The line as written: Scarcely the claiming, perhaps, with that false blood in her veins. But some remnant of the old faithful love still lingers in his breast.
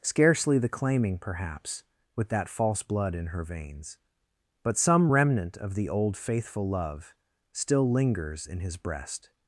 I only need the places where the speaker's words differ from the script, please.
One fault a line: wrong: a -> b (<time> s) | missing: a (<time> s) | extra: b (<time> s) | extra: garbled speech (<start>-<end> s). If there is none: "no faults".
no faults